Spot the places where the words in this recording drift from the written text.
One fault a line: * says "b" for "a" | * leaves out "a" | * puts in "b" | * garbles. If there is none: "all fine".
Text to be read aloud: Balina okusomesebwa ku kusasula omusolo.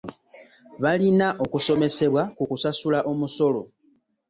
all fine